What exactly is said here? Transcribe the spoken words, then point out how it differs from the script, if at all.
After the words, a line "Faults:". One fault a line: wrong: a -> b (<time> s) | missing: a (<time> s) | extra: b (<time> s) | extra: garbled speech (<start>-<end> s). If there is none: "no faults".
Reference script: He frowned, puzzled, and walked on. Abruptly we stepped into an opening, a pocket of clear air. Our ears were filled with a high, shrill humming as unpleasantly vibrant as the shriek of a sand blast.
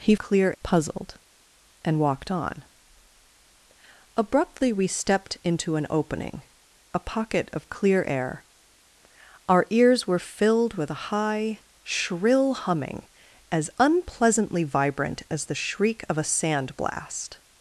He clear, puzzled, and walked on. Abruptly we stepped into an opening, a pocket of clear air. Our ears were filled with a high, shrill humming as unpleasantly vibrant as the shriek of a sand blast.
Faults:
wrong: frowned -> clear (0.2 s)